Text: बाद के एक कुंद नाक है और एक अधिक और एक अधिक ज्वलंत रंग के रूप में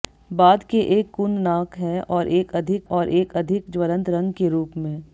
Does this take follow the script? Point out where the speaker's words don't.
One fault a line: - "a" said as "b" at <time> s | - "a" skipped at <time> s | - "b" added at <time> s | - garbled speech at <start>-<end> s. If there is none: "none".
none